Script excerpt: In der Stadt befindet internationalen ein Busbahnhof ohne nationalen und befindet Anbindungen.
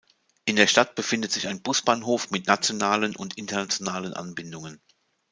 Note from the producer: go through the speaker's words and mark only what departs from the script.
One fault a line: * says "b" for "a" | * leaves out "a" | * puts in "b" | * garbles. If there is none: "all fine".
* says "sich" for "internationalen"
* says "mit" for "ohne"
* says "internationalen" for "befindet"